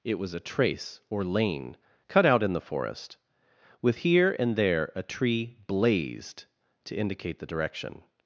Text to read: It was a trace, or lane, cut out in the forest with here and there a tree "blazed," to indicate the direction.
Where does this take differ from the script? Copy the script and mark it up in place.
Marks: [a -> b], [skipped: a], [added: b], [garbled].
It was a trace, or lane, cut out in the forest with here and there a tree "blazed," to indicate the direction.